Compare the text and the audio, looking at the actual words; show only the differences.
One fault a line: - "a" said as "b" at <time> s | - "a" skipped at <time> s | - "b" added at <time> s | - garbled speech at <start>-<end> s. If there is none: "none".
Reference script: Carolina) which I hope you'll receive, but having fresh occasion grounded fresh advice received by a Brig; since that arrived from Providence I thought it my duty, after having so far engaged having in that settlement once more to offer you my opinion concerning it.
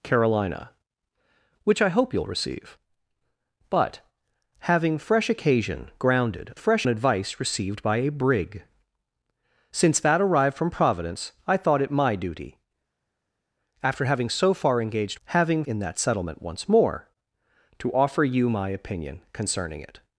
none